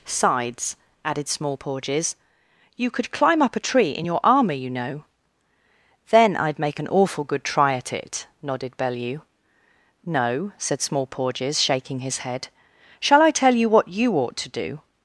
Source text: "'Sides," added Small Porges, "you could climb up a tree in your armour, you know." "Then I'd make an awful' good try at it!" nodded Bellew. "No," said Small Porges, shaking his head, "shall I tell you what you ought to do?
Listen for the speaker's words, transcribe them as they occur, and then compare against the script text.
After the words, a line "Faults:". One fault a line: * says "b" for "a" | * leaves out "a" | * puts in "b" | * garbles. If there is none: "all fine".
"'Sides," added Small Porges, "you could climb up a tree in your armour, you know." "Then I'd make an awful' good try at it!" nodded Bellew. "No," said Small Porges, shaking his head, "shall I tell you what you ought to do?
Faults:
all fine